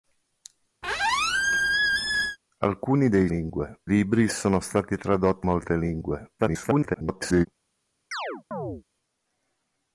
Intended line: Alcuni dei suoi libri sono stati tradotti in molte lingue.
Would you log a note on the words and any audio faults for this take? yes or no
yes